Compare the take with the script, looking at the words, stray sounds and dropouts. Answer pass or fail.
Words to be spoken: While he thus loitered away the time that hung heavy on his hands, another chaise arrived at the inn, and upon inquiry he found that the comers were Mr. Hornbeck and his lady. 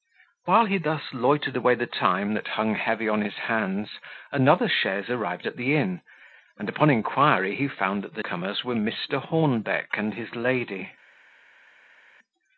pass